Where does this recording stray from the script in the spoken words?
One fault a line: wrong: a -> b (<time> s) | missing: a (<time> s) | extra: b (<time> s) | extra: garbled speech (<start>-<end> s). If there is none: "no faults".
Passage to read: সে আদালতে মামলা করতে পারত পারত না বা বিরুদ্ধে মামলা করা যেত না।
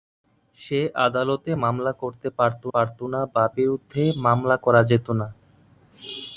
no faults